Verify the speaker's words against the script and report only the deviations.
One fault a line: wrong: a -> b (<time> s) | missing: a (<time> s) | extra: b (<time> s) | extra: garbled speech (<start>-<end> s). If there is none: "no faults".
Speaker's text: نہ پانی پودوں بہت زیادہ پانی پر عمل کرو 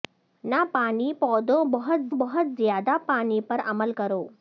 extra: بہت (2.1 s)